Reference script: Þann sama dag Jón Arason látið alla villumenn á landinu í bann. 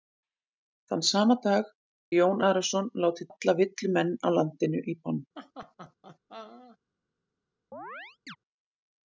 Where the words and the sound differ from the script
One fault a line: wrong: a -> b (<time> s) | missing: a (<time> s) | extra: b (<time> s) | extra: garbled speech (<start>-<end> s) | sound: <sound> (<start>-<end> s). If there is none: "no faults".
sound: laugh (5.4-6.8 s)
sound: chirp (7.7-8.4 s)